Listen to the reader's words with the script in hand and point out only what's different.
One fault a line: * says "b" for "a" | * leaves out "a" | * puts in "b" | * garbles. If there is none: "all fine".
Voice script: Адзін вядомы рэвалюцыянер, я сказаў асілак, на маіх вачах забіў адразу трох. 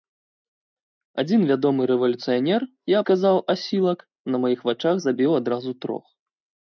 all fine